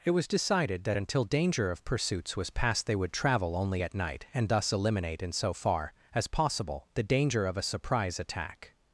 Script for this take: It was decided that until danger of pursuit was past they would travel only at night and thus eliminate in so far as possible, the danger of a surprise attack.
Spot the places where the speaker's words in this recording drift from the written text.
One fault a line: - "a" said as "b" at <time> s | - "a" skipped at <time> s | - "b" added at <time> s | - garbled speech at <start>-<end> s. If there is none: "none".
- "pursuit" said as "pursuits" at 1.8 s